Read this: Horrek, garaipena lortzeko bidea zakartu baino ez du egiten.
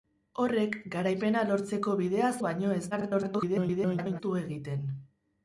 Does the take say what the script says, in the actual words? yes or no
no